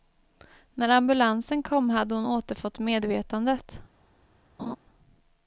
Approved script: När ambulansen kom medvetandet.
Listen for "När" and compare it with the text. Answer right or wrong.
right